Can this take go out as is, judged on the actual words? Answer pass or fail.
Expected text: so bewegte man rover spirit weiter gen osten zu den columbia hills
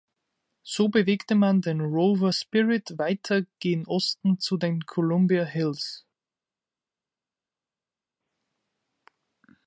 fail